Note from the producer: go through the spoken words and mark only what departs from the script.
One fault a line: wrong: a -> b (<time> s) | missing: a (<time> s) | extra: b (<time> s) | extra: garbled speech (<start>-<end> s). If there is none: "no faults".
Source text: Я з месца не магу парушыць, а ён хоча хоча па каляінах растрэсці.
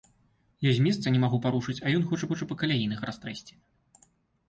no faults